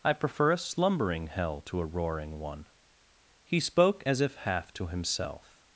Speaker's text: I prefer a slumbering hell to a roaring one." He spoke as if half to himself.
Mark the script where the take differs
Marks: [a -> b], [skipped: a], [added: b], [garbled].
I prefer a slumbering hell to a roaring one." He spoke as if half to himself.